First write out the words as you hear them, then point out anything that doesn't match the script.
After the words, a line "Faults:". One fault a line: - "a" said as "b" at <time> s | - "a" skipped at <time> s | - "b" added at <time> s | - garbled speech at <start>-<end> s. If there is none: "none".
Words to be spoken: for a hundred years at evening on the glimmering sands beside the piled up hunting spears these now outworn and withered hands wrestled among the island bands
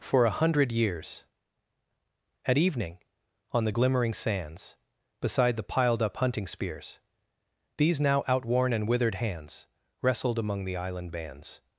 for a hundred years at evening on the glimmering sands beside the piled up hunting spears these now outworn and withered hands wrestled among the island bands
Faults:
none